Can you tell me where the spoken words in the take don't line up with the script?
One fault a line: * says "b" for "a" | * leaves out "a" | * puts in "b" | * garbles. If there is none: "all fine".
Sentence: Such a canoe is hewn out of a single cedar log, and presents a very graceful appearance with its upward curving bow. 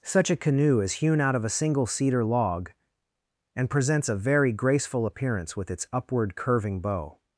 all fine